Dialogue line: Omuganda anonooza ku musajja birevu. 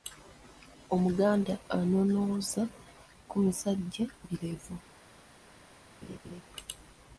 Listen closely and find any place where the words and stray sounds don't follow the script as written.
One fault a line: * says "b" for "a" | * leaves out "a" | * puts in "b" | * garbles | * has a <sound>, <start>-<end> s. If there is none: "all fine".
* has a laugh, 6.0-6.4 s